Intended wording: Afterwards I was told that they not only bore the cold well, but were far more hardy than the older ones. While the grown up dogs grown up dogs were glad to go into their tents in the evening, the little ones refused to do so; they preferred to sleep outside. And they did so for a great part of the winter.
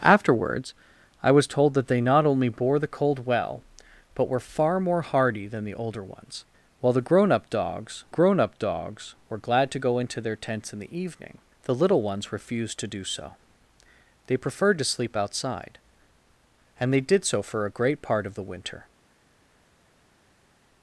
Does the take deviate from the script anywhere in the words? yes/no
no